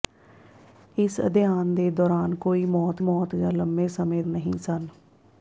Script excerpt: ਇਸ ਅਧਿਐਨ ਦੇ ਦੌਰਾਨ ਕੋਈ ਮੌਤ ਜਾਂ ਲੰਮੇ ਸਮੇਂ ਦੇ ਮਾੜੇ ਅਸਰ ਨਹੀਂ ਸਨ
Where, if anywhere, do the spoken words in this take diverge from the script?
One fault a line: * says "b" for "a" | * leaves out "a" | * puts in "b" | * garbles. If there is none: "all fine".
* puts in "ਮੌਤ"
* leaves out "ਦੇ ਮਾੜੇ ਅਸਰ"